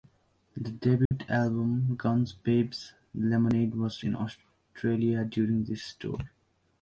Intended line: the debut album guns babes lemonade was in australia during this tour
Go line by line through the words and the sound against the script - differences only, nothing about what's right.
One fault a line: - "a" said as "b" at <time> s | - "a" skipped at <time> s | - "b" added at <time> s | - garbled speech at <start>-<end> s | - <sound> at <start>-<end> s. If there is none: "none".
- dropout at 1.1-1.1 s